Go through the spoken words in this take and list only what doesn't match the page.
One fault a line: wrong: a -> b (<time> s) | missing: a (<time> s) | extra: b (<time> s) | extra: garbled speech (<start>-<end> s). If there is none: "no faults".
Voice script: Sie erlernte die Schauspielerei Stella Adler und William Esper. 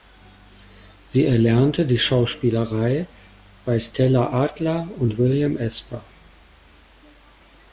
extra: bei (3.6 s)